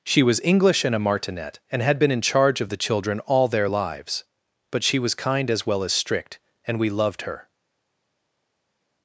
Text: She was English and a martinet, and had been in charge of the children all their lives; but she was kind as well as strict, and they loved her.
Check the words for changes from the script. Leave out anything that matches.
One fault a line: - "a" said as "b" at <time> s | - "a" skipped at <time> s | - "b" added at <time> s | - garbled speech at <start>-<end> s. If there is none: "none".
- "they" said as "we" at 6.8 s